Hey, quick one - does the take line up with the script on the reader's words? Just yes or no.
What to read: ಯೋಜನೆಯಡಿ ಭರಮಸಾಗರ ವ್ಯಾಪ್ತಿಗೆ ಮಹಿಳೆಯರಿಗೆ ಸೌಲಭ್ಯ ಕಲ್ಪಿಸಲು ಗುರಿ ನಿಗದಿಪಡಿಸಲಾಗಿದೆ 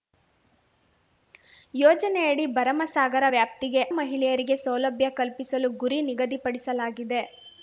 yes